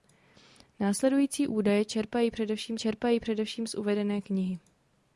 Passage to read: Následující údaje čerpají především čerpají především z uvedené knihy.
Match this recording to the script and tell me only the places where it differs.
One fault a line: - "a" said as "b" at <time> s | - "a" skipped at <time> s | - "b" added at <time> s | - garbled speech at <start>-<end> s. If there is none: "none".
none